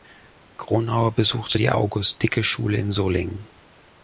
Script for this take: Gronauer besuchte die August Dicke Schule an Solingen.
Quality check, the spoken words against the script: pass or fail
fail